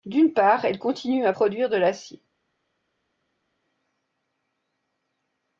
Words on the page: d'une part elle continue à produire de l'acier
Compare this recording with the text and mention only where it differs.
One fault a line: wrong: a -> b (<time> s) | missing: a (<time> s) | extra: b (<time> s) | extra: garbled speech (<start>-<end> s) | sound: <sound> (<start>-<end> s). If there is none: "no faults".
no faults